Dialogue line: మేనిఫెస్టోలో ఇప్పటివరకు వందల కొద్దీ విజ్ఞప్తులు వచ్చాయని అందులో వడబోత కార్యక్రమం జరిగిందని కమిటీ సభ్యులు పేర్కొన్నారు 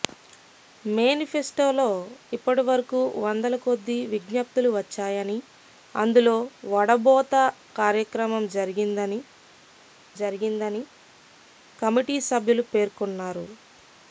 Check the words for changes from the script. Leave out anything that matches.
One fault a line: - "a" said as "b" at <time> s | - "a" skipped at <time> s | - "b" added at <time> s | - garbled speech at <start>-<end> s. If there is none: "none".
- "జరిగిందని" added at 10.2 s